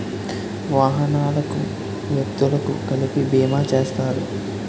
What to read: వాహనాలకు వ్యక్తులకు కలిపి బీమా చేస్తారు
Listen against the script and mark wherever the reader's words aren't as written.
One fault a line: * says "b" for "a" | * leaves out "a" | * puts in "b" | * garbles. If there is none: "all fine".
all fine